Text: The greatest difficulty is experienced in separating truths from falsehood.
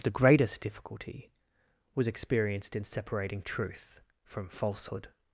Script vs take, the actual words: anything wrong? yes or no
yes